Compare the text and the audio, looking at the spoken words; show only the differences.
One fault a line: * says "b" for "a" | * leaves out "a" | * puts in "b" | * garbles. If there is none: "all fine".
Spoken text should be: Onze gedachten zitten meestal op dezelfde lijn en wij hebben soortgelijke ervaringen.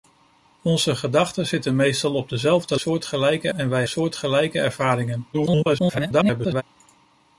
* says "soortgelijke" for "lijn"
* leaves out "hebben"
* garbles